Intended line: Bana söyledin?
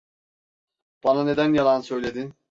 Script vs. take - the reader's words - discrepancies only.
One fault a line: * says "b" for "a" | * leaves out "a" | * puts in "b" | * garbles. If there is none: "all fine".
* puts in "neden yalan"